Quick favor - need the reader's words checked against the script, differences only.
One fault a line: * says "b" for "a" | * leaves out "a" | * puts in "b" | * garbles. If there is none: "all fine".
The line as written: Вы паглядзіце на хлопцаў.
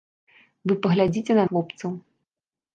all fine